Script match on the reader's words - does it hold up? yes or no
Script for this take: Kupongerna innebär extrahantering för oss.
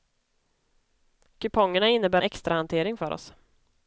yes